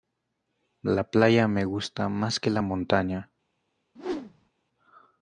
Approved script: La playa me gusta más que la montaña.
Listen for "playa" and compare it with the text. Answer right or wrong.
right